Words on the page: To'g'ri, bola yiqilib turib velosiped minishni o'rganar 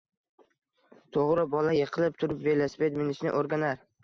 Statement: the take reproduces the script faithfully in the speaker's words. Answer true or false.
true